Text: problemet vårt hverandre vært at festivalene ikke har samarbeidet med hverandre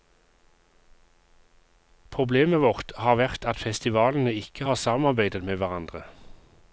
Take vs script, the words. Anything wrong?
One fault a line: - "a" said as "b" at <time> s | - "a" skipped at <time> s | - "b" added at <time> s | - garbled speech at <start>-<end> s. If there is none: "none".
- "hverandre" said as "har" at 3.0 s